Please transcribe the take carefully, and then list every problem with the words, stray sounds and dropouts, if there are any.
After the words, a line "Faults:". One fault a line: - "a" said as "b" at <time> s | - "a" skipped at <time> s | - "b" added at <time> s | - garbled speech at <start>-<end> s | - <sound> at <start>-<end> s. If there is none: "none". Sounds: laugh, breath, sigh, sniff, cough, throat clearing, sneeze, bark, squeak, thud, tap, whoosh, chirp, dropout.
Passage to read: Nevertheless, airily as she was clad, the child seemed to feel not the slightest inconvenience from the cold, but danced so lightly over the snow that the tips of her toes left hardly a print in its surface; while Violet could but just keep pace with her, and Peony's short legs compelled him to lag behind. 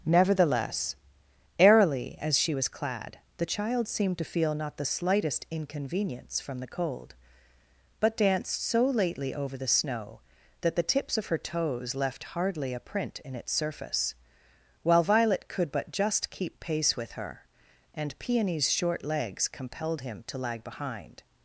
Nevertheless, airily as she was clad, the child seemed to feel not the slightest inconvenience from the cold, but danced so lately over the snow that the tips of her toes left hardly a print in its surface; while Violet could but just keep pace with her, and Peony's short legs compelled him to lag behind.
Faults:
- "lightly" said as "lately" at 8.9 s